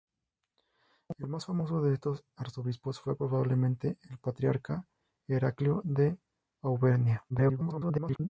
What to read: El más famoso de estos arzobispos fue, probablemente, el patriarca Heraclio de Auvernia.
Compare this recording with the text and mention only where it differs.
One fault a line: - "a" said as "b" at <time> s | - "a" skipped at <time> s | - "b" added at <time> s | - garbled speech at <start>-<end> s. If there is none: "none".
- garbled speech at 7.3-8.3 s